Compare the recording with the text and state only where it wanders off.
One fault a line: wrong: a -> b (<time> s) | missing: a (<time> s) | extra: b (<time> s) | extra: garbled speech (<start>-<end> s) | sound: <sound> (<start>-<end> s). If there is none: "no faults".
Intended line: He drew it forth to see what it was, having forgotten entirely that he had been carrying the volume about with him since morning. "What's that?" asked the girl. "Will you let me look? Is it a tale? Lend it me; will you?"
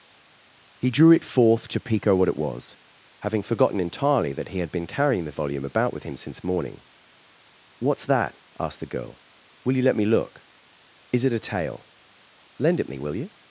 wrong: see -> pico (1.8 s)